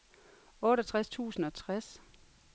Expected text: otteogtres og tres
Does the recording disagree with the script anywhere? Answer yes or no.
yes